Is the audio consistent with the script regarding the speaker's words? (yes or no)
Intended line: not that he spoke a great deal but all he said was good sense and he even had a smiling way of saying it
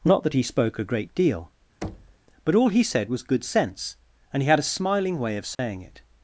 no